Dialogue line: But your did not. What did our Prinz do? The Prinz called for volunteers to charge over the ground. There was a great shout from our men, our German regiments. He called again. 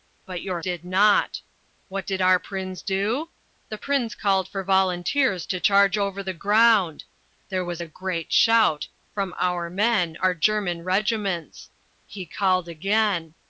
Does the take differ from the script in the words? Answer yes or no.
no